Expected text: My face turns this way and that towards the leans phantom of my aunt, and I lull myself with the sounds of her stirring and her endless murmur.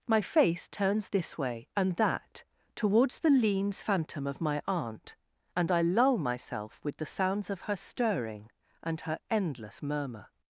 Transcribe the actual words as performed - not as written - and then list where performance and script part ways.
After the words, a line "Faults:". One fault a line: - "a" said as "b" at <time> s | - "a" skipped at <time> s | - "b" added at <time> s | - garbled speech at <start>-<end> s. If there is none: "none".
My face turns this way and that towards the leans phantom of my aunt, and I lull myself with the sounds of her stirring and her endless murmur.
Faults:
none